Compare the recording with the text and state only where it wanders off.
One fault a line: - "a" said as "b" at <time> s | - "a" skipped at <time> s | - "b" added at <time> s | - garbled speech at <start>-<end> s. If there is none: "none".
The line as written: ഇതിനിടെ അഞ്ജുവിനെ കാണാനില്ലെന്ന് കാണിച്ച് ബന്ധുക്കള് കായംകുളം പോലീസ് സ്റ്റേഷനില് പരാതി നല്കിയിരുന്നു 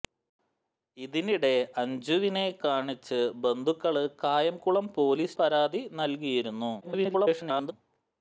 - "കാണാനില്ലെന്ന്" skipped at 2.5 s
- "സ്റ്റേഷനില്" skipped at 5.3 s
- garbled speech at 6.8-7.7 s